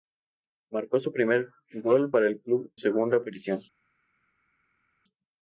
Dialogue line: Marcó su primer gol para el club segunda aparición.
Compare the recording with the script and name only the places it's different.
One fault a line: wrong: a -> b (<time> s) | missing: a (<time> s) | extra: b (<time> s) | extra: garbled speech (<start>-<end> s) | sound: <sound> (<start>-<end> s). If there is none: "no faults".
no faults